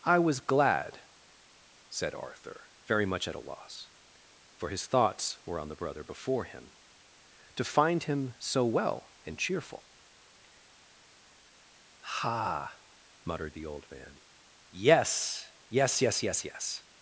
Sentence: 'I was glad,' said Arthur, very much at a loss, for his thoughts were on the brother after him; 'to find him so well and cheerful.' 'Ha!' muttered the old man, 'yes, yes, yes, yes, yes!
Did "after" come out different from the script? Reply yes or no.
yes